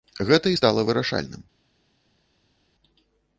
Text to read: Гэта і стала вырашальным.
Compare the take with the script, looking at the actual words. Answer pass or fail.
pass